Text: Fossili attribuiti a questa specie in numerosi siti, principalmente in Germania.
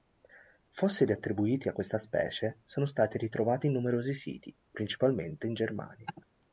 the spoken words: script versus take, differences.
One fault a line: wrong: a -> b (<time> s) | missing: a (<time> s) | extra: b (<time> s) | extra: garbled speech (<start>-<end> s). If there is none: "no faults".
extra: sono stati ritrovati (2.6 s)